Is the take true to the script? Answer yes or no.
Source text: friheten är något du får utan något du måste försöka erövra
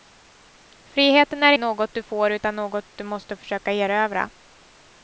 yes